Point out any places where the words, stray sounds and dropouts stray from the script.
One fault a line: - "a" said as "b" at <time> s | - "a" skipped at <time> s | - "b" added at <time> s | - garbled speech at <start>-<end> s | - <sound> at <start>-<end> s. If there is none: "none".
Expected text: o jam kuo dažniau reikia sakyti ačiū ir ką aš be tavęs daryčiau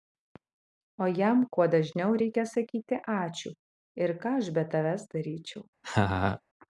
- laugh at 5.8-6.4 s